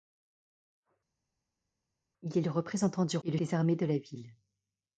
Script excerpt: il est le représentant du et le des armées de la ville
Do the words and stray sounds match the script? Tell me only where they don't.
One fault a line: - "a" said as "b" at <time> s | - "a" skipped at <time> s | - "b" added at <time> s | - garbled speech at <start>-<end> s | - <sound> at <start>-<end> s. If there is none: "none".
none